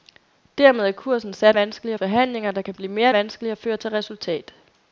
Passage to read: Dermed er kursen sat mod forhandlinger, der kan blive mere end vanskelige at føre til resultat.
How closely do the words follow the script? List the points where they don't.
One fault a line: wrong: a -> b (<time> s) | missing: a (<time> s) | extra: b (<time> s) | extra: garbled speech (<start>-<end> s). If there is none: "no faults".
wrong: mod -> vanskelige (1.5 s)
missing: end (3.1 s)